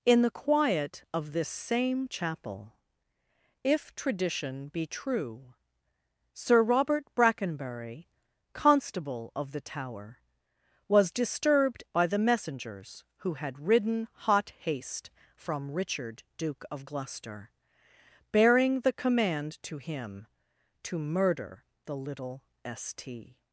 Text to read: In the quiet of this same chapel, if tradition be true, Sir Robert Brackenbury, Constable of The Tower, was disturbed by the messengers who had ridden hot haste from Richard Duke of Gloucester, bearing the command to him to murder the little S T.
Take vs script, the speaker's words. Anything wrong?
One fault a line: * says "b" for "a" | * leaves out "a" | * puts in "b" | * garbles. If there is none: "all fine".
all fine